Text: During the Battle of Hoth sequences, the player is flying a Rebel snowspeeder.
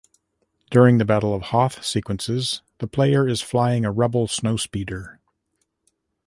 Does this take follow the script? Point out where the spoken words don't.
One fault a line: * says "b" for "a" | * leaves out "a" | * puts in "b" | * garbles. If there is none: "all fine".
all fine